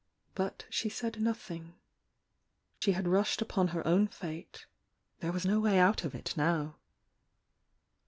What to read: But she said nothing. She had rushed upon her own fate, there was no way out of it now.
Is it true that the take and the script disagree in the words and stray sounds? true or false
true